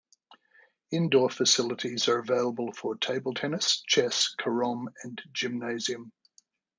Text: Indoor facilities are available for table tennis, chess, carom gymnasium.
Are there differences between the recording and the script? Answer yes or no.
yes